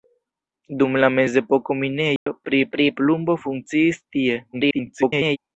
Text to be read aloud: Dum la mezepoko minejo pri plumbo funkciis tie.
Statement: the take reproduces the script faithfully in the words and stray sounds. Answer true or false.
false